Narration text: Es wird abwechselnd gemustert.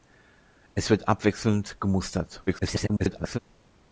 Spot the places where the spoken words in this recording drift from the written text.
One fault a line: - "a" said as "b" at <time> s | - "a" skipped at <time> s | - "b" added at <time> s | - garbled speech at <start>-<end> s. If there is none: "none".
- garbled speech at 2.5-3.4 s